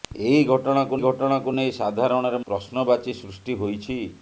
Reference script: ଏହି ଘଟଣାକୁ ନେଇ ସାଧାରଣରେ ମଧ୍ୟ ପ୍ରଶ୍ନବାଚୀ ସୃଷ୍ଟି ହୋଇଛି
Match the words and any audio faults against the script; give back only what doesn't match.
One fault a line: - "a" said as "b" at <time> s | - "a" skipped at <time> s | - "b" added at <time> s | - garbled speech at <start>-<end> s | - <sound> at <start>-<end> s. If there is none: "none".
- "ଘଟଣାକୁ" added at 1.0 s
- "ମଧ୍ୟ" skipped at 2.4 s